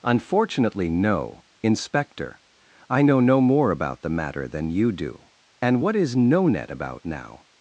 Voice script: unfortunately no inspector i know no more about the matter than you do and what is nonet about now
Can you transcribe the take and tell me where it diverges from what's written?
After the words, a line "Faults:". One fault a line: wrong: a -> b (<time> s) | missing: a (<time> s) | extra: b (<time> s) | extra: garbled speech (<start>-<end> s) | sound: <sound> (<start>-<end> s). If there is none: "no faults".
unfortunately no inspector i know no more about the matter than you do and what is nonet about now
Faults:
no faults